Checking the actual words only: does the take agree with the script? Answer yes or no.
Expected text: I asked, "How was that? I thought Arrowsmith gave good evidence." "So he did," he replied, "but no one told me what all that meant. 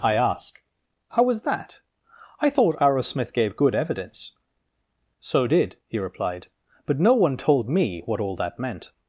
no